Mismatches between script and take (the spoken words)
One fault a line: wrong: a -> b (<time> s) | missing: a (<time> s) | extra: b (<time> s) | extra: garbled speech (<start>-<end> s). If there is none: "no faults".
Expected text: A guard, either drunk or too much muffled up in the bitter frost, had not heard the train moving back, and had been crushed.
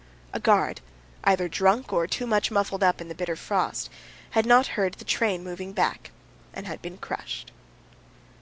no faults